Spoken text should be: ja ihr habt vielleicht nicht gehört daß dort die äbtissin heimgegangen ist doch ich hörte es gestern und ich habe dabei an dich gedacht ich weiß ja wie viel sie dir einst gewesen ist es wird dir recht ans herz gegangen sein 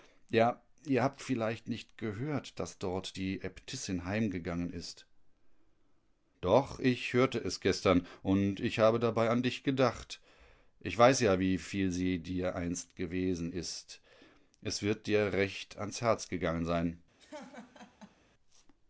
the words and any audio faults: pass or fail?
fail